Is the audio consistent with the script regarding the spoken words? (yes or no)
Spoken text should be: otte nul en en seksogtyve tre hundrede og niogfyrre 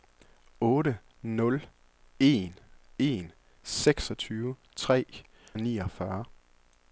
no